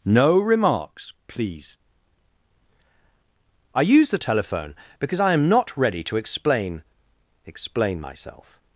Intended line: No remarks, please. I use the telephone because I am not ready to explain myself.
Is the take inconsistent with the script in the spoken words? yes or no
yes